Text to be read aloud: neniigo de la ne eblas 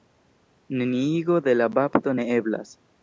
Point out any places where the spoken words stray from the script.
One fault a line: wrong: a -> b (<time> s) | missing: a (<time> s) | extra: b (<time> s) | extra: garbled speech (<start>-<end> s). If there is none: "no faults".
extra: bapto (1.8 s)